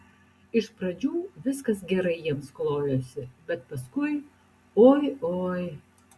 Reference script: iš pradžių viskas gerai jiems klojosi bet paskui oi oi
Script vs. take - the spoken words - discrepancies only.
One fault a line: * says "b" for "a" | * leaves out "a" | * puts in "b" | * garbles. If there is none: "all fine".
all fine